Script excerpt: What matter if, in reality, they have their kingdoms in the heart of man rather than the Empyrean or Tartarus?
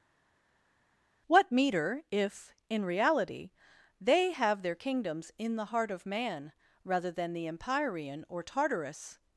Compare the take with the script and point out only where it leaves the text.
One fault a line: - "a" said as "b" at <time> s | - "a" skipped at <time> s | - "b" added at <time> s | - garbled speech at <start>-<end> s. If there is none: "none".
- "matter" said as "meter" at 1.5 s